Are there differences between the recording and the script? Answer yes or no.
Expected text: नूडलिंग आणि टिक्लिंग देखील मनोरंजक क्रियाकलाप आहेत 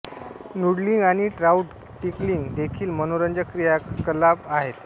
yes